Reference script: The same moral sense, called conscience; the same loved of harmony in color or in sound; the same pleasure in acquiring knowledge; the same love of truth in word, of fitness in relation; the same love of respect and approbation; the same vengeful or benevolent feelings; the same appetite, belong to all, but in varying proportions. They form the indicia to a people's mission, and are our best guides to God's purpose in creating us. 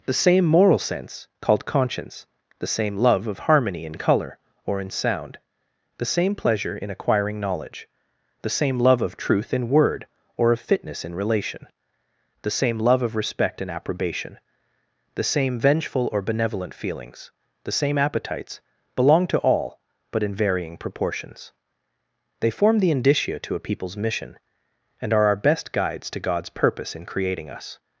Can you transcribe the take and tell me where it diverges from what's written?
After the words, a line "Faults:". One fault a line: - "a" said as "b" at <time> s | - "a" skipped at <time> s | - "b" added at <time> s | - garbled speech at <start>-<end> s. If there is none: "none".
The same moral sense, called conscience; the same love of harmony in color or in sound; the same pleasure in acquiring knowledge; the same love of truth in word, or of fitness in relation; the same love of respect and approbation; the same vengeful or benevolent feelings; the same appetites, belong to all, but in varying proportions. They form the indicia to a people's mission, and are our best guides to God's purpose in creating us.
Faults:
- "loved" said as "love" at 3.0 s
- "or" added at 10.4 s
- "appetite" said as "appetites" at 18.0 s